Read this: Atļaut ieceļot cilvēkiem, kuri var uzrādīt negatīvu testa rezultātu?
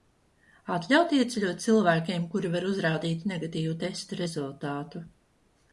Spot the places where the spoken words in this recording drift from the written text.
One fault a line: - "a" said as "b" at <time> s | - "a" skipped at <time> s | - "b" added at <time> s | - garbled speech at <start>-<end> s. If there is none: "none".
none